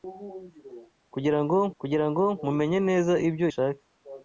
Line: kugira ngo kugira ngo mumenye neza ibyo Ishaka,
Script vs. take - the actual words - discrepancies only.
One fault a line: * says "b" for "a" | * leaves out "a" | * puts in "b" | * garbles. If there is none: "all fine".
all fine